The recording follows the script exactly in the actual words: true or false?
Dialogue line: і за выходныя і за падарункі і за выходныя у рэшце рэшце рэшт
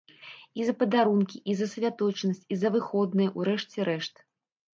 false